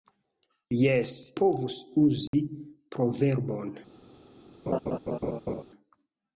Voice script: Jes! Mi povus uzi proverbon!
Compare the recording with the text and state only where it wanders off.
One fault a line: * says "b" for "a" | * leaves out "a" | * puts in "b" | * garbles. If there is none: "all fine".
* leaves out "Mi"